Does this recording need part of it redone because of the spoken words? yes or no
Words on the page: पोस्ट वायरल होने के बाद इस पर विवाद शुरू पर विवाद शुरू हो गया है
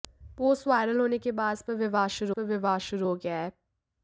no